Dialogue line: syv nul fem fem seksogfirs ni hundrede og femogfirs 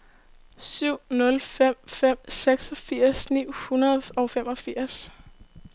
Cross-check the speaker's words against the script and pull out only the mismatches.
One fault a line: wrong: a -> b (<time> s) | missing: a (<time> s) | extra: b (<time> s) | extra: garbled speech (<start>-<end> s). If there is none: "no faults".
no faults